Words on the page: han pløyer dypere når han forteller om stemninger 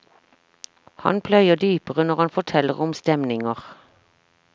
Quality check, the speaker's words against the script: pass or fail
pass